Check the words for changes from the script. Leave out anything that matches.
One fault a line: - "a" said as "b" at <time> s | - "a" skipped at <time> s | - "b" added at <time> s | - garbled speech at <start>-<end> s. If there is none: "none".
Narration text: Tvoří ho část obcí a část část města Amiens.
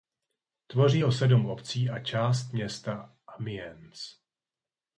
- "část" said as "sedm" at 1.1 s
- "část" skipped at 2.5 s